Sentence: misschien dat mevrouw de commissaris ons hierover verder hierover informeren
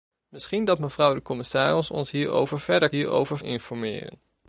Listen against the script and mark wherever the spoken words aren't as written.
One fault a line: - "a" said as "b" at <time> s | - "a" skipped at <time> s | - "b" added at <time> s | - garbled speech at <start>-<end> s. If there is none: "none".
none